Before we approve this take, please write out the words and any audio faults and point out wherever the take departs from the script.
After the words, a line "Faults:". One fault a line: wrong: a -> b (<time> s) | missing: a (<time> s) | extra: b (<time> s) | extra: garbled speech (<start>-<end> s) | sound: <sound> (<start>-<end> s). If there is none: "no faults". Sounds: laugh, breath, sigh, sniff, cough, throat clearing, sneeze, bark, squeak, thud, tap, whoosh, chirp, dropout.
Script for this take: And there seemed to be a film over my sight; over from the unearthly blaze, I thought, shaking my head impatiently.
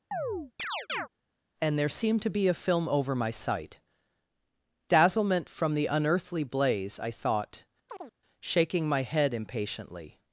And there seemed to be a film over my sight; dazzlement from the unearthly blaze, I thought, shaking my head impatiently.
Faults:
sound: chirp (0.1-1.1 s)
wrong: over -> dazzlement (4.9 s)
sound: chirp (7.9-8.1 s)